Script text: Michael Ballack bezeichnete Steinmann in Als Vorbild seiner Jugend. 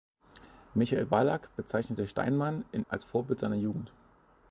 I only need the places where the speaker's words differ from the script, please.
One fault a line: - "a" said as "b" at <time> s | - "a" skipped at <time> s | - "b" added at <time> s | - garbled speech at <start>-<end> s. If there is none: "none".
none